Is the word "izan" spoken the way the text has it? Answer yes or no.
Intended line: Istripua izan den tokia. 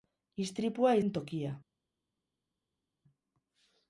no